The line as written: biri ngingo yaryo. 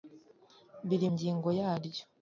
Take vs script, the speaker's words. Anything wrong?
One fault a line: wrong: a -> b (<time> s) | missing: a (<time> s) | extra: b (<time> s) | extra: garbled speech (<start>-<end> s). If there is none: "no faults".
no faults